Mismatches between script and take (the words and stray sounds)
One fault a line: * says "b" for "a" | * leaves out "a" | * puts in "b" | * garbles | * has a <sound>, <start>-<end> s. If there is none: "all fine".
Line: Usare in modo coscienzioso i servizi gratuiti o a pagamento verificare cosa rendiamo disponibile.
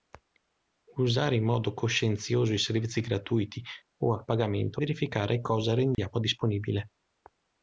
* has a dropout, 5.9-6.0 s